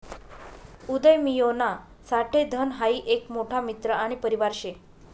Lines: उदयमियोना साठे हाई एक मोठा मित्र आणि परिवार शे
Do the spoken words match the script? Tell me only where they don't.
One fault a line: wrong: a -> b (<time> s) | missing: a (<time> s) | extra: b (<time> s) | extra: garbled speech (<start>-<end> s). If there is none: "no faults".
extra: धन (2.5 s)